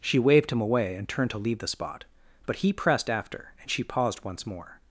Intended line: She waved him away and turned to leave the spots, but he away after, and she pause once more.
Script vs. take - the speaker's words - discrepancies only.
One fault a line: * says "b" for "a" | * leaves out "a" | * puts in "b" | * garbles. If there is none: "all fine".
* says "spot" for "spots"
* says "pressed" for "away"
* says "paused" for "pause"